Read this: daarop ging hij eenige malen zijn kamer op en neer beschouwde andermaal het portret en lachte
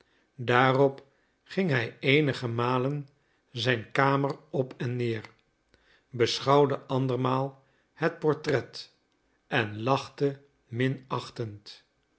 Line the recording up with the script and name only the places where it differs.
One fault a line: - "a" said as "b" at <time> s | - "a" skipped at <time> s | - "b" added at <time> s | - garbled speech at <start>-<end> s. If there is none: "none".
none